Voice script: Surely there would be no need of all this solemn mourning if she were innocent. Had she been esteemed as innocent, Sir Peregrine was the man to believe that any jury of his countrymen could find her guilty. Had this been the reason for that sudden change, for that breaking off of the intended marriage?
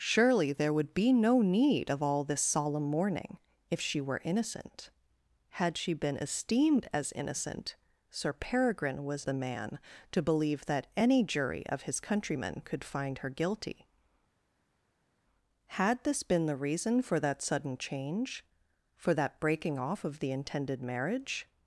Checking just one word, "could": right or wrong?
right